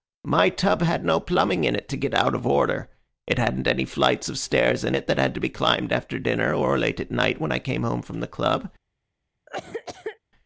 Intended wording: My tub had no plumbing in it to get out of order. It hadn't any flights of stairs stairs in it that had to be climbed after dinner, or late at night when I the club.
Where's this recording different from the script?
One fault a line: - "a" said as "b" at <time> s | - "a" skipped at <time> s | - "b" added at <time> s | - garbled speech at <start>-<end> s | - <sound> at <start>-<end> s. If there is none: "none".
- "stairs" skipped at 4.9 s
- "came home from" added at 7.6 s
- cough at 9.5-10.2 s